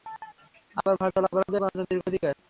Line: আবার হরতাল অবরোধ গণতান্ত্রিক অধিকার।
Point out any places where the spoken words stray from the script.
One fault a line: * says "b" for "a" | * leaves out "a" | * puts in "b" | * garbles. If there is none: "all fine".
all fine